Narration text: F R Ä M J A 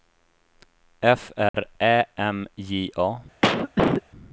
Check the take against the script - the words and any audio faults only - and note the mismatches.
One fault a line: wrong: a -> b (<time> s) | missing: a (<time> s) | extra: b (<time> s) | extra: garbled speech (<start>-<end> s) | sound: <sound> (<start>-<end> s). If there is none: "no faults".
sound: dropout (1.5-1.5 s)
sound: cough (3.4-4.0 s)